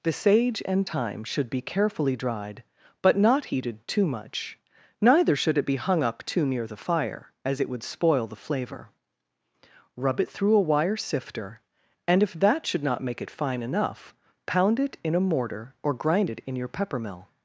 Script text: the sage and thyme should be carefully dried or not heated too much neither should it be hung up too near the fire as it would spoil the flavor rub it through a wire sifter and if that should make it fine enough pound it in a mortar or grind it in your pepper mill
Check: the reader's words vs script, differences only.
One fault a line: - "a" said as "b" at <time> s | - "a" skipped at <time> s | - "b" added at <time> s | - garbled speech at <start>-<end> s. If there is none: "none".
- "or" said as "but" at 3.0 s
- "not" added at 12.8 s